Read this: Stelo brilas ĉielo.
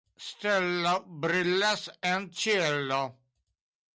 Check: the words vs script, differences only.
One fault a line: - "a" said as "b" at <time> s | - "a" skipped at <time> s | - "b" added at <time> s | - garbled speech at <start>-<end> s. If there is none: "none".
- "en" added at 2.1 s